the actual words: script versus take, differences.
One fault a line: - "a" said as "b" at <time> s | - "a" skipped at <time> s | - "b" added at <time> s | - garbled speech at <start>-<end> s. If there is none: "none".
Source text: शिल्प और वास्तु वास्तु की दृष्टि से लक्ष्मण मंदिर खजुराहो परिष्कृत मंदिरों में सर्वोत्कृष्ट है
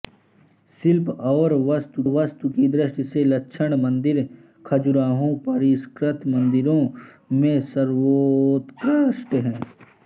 none